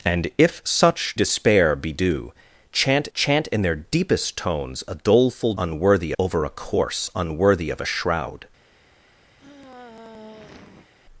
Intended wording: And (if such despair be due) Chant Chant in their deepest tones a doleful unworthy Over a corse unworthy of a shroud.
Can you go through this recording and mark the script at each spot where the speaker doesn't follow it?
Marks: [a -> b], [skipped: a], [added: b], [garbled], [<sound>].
And (if such despair be due) Chant Chant in their deepest tones a doleful unworthy Over a corse unworthy of a shroud. [sigh]